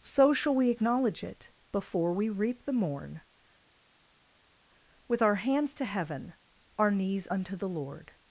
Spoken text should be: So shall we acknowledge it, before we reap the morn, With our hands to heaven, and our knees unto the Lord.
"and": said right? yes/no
no